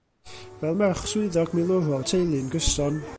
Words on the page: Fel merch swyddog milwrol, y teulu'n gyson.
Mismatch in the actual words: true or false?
false